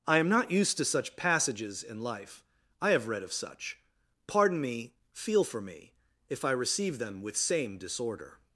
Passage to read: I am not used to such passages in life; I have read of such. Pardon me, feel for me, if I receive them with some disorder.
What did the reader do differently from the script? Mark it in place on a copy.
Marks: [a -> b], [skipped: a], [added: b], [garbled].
I am not used to such passages in life; I have read of such. Pardon me, feel for me, if I receive them with [some -> same] disorder.